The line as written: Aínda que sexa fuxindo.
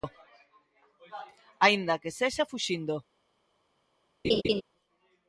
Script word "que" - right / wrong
right